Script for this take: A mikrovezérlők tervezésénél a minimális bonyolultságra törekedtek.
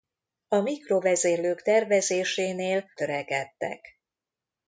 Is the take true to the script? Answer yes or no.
no